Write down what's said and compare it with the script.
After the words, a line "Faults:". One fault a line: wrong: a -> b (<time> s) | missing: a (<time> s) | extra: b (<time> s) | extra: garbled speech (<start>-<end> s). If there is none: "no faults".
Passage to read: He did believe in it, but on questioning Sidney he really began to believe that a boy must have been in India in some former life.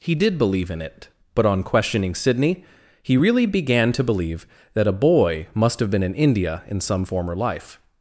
He did believe in it, but on questioning Sidney he really began to believe that a boy must have been in India in some former life.
Faults:
no faults